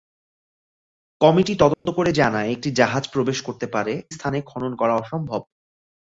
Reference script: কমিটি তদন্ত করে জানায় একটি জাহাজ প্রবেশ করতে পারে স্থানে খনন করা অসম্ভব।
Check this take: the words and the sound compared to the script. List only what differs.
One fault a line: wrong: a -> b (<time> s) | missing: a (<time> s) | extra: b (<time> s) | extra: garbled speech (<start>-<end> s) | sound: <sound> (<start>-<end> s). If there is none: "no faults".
sound: dropout (1.7-1.9 s)